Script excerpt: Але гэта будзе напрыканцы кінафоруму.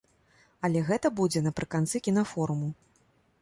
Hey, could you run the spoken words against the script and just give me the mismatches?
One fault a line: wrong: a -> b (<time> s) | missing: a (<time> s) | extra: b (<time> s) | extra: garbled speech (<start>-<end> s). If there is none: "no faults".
no faults